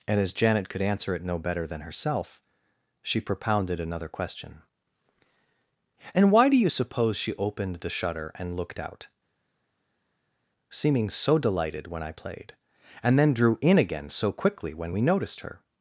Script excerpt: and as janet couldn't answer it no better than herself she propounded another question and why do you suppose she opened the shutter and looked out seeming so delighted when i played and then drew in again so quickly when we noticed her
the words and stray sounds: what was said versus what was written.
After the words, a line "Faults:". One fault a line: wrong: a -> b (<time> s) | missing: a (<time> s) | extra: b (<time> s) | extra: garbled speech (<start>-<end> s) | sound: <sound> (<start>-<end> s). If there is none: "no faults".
and as janet could answer it no better than herself she propounded another question and why do you suppose she opened the shutter and looked out seeming so delighted when i played and then drew in again so quickly when we noticed her
Faults:
wrong: couldn't -> could (0.7 s)